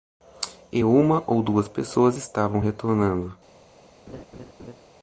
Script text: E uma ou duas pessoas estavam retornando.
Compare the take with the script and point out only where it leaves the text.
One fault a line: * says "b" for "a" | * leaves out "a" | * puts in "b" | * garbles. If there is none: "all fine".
all fine